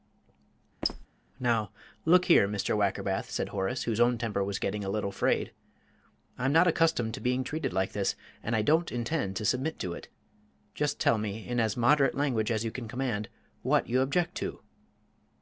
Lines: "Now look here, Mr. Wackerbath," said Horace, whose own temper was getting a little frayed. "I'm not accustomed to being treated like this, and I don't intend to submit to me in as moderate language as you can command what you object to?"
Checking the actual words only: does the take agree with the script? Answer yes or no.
no